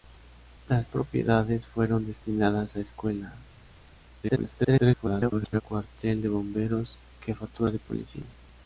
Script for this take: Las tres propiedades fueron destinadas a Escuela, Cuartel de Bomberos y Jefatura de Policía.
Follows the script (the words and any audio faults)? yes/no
no